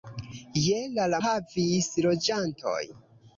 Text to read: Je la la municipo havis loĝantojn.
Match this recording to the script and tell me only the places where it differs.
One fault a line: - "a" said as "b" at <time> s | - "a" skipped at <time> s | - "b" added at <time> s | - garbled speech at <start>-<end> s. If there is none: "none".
- "municipo" skipped at 1.2 s